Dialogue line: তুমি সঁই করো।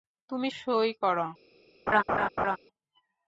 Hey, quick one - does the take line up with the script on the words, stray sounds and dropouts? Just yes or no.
no